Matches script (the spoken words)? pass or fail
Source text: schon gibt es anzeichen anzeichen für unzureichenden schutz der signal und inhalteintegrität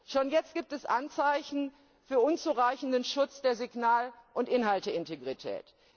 fail